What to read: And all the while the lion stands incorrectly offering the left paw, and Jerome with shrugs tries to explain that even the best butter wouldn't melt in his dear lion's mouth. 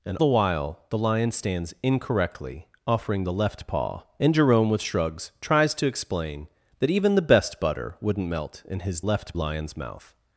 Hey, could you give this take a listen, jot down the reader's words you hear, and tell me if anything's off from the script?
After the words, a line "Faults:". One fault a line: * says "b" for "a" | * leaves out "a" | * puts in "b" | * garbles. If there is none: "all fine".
And the while the lion stands incorrectly offering the left paw, and Jerome with shrugs tries to explain that even the best butter wouldn't melt in his left lion's mouth.
Faults:
* leaves out "all"
* says "left" for "dear"